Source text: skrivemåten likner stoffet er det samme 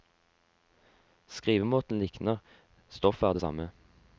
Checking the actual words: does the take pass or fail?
pass